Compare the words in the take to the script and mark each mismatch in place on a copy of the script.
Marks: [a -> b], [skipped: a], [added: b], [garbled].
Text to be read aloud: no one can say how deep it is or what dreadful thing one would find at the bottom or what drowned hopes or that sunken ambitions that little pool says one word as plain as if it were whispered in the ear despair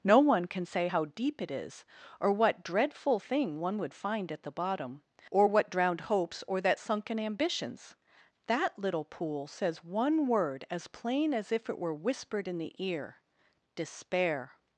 no one can say how deep it is or what dreadful thing one would find at the bottom or what drowned hopes or that sunken ambitions that little pool says one word as plain as if it were whispered in the ear despair